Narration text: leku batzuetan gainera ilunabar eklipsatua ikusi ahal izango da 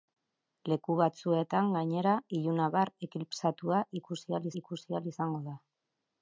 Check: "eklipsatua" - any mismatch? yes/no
no